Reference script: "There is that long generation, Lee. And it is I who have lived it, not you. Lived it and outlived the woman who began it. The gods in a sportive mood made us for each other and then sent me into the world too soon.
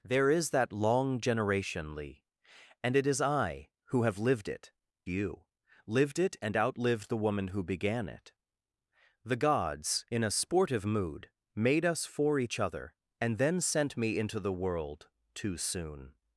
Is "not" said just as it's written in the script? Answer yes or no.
no